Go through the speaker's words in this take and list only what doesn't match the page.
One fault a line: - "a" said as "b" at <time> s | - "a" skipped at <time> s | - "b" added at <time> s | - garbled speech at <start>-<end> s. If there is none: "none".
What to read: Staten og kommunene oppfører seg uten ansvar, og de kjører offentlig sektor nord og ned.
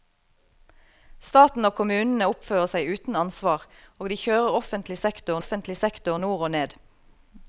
- "offentlig sektor" added at 5.4 s